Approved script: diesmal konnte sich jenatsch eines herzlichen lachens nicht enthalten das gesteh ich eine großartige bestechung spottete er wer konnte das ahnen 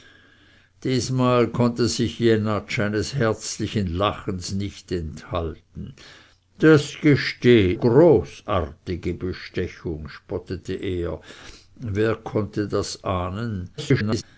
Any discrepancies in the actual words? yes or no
yes